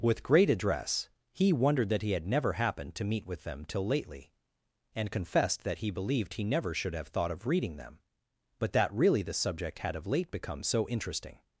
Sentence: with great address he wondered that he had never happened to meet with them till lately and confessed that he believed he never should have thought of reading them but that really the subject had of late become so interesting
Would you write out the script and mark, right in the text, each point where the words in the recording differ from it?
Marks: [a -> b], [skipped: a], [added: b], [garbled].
with great address he wondered that he had never happened to meet with them till lately and confessed that he believed he never should have thought of reading them but that really the subject had of late become so interesting